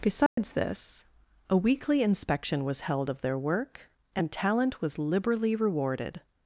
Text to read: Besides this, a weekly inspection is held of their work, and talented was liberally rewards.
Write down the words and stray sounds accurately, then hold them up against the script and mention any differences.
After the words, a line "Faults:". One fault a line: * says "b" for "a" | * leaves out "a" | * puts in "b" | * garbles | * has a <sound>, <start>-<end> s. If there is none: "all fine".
Besides this, a weekly inspection was held of their work, and talent was liberally rewarded.
Faults:
* has a dropout, 0.3-0.4 s
* says "was" for "is"
* says "talent" for "talented"
* says "rewarded" for "rewards"